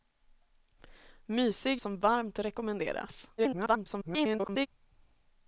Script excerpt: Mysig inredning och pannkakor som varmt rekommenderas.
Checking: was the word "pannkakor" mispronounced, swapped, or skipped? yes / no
yes